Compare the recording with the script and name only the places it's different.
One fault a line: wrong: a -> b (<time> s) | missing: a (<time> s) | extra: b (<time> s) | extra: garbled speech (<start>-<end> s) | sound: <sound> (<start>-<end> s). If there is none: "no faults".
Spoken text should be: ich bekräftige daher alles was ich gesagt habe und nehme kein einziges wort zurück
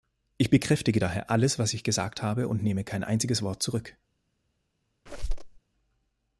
sound: squeak (5.1-5.6 s)